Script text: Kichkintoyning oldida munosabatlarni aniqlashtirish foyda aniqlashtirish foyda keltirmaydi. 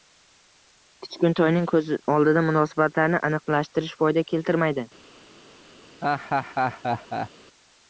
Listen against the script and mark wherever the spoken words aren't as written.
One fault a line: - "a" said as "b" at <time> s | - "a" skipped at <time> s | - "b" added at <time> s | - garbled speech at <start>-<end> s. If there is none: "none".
- "ko‘z" added at 1.7 s
- "aniqlashtirish foyda" skipped at 4.2 s